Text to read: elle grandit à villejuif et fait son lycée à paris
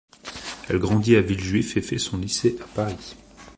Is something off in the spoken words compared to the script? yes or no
no